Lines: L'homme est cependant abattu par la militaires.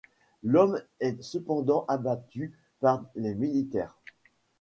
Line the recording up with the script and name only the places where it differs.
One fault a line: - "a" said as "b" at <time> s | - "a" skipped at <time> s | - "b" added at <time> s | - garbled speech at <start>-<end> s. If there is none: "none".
- "la" said as "les" at 3.1 s